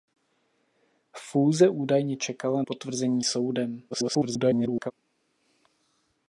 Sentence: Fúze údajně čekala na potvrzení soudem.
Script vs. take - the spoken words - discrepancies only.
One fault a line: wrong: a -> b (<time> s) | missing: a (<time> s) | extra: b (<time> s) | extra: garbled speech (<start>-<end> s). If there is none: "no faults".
missing: na (2.6 s)
extra: garbled speech (3.9-4.9 s)